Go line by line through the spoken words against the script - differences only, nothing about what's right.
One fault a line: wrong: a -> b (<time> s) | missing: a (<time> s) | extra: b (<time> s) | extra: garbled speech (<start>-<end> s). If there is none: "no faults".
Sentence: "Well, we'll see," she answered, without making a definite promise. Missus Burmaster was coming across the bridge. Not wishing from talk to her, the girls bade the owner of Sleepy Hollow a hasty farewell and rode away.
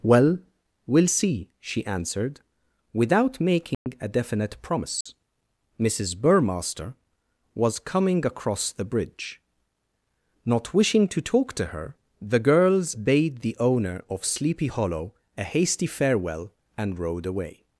wrong: from -> to (11.1 s)